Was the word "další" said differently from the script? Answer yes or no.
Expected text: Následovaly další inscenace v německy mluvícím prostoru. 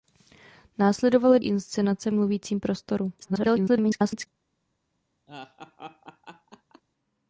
yes